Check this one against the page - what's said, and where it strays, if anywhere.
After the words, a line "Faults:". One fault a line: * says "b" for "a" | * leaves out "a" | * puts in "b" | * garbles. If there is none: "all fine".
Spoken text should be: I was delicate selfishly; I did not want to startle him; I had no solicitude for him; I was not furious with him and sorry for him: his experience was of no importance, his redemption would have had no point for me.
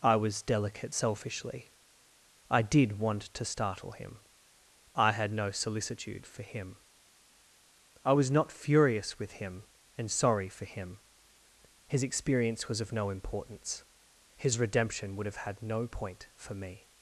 I was delicate selfishly; I did want to startle him; I had no solicitude for him; I was not furious with him and sorry for him: his experience was of no importance, his redemption would have had no point for me.
Faults:
* leaves out "not"